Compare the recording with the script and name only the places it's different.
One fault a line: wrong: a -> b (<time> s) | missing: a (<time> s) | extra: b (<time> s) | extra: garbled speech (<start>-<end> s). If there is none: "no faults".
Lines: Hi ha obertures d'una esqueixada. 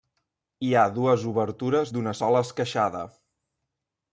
extra: dues (0.9 s)
extra: sola (2.2 s)